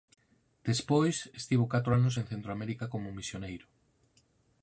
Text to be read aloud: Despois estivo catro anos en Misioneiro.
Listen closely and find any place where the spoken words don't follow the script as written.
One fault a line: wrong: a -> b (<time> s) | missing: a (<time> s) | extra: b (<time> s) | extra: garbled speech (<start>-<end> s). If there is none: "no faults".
extra: Centroamérica como (2.3 s)